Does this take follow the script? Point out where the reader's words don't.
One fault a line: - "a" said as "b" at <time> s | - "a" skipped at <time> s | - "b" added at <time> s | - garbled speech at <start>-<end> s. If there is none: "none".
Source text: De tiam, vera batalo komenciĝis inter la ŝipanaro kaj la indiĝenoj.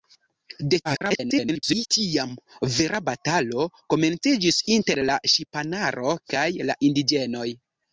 - garbled speech at 0.8-1.9 s